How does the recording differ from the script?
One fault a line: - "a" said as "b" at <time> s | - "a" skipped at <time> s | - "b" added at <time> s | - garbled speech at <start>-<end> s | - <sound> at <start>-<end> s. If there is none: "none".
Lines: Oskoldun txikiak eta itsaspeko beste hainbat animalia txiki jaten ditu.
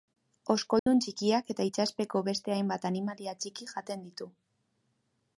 - dropout at 0.8-0.9 s